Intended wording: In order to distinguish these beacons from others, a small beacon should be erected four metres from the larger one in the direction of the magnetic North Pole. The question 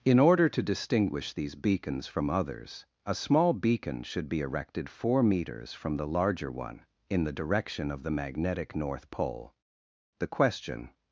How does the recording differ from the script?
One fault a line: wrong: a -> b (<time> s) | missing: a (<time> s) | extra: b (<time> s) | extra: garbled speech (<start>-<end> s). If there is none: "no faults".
no faults